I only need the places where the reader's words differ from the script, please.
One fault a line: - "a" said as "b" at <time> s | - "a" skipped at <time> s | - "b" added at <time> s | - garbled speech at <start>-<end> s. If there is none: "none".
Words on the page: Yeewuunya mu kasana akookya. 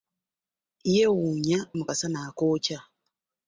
none